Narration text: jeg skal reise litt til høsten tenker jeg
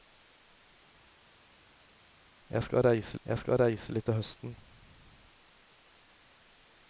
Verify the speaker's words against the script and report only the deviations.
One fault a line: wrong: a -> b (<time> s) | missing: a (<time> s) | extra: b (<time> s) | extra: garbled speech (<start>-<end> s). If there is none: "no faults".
extra: jeg skal reise (3.2 s)
missing: tenker (4.5 s)